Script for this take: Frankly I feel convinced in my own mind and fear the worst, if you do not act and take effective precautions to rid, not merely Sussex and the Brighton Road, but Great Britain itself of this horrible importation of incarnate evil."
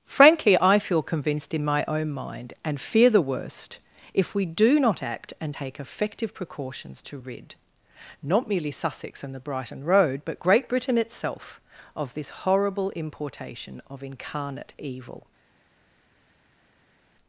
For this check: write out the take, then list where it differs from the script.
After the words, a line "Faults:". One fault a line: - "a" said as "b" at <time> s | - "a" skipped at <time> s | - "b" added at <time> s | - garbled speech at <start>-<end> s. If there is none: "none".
Frankly I feel convinced in my own mind and fear the worst, if we do not act and take effective precautions to rid, not merely Sussex and the Brighton Road, but Great Britain itself of this horrible importation of incarnate evil."
Faults:
- "you" said as "we" at 4.3 s